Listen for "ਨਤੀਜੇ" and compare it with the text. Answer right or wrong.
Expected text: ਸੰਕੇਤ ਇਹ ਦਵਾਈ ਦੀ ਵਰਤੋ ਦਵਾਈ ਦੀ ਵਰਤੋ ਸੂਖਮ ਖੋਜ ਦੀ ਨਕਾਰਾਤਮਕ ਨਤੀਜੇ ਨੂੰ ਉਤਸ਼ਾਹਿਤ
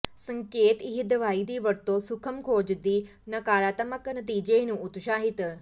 right